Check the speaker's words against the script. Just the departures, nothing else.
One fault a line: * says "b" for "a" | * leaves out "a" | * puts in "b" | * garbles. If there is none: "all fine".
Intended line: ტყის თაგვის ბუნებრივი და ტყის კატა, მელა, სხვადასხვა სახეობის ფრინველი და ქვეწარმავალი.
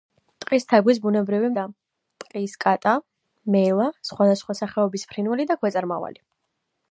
all fine